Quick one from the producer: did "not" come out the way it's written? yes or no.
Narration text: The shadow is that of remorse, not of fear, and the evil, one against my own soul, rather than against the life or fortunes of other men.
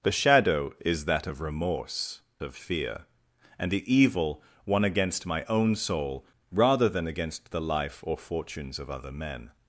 no